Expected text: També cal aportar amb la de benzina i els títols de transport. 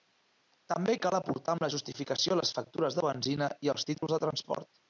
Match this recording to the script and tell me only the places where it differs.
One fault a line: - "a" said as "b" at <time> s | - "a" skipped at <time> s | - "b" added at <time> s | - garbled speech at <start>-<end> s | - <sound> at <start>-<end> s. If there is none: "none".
- "justificació les factures" added at 1.7 s
- dropout at 4.0-4.0 s